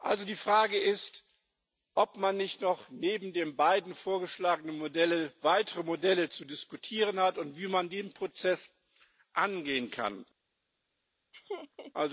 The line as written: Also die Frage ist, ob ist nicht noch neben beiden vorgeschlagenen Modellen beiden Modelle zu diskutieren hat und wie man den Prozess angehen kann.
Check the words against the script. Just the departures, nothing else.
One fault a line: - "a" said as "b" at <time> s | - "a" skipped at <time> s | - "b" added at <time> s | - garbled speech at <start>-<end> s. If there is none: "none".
- "ist" said as "man" at 2.2 s
- "den" added at 3.3 s
- "beiden" said as "weitere" at 5.4 s